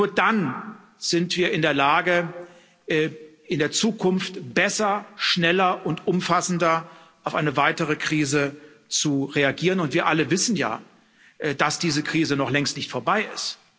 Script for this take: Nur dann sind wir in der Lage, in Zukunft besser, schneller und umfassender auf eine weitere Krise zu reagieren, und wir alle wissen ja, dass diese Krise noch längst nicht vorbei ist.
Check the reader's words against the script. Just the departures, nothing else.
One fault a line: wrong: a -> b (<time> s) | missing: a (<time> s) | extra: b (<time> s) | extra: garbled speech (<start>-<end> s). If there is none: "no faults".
extra: der (3.6 s)